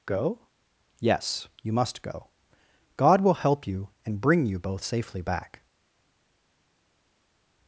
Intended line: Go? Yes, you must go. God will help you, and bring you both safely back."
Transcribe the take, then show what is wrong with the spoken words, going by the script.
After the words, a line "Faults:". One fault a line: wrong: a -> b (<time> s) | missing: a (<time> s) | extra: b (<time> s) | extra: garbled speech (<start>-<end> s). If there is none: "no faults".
Go? Yes, you must go. God will help you, and bring you both safely back."
Faults:
no faults